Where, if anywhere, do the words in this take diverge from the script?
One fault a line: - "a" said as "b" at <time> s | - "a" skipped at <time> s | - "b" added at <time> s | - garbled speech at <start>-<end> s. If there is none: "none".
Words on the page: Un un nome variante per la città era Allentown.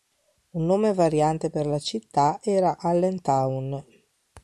- "un" skipped at 0.7 s